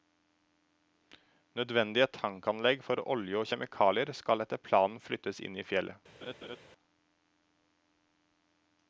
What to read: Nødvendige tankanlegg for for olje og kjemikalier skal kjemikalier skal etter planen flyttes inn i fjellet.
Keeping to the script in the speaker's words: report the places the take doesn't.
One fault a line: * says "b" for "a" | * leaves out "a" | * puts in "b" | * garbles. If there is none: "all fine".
* leaves out "for"
* leaves out "kjemikalier skal"